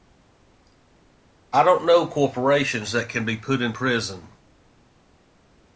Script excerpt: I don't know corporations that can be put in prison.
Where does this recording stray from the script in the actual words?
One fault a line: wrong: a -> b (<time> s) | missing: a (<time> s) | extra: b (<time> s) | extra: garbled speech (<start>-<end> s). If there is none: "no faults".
no faults